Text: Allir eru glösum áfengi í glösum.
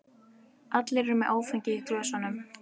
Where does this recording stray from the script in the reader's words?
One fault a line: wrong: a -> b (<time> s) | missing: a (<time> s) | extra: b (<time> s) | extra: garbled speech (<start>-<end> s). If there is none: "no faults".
wrong: glösum -> með (1.2 s)